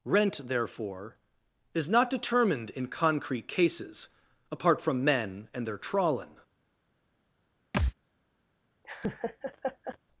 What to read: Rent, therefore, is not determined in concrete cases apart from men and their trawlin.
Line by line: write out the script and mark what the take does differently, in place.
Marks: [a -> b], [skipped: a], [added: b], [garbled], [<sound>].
Rent, therefore, is not determined in concrete cases apart from men and their trawlin. [thud] [laugh]